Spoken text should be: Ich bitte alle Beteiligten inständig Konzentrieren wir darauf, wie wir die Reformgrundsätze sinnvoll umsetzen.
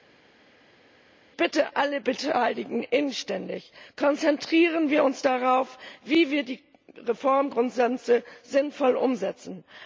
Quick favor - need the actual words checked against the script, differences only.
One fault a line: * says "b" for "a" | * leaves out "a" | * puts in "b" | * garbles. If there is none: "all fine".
* puts in "uns"